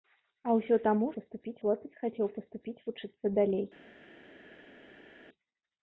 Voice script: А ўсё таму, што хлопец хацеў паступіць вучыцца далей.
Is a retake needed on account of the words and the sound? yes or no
yes